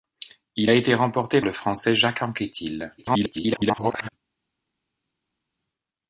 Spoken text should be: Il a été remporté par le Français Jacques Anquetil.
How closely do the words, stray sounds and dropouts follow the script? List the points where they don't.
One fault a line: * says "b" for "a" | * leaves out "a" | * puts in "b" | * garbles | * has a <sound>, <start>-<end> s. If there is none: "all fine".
* leaves out "par"
* garbles